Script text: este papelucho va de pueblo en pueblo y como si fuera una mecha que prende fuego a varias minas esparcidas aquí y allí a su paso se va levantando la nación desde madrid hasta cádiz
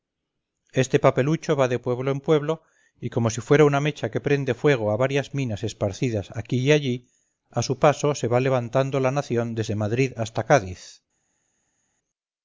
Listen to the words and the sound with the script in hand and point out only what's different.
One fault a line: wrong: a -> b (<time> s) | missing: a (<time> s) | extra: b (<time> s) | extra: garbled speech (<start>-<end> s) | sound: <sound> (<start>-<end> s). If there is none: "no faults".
no faults